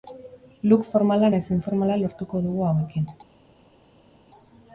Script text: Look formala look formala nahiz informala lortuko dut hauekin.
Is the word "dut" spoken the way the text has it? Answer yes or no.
no